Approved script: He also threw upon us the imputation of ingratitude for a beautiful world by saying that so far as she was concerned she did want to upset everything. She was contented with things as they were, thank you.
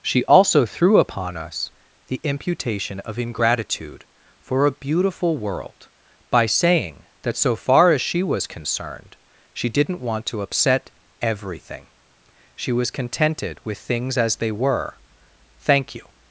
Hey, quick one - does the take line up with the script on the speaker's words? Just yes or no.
no